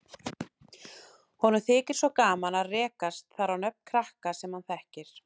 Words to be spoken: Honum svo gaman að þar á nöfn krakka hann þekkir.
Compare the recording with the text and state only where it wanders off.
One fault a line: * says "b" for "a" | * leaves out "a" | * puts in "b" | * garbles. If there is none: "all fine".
* puts in "þykir"
* puts in "rekast"
* puts in "sem"